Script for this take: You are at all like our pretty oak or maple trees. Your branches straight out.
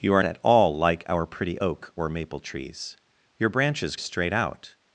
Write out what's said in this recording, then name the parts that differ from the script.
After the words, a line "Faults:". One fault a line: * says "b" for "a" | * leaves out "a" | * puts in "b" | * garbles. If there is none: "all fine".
You are at all like our pretty oak or maple trees. Your branches straight out.
Faults:
all fine